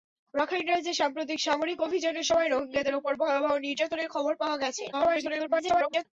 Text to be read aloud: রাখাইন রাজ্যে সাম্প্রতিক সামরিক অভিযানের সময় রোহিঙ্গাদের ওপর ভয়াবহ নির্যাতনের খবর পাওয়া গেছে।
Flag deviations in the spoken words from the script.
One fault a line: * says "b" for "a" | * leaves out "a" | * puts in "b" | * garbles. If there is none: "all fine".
* garbles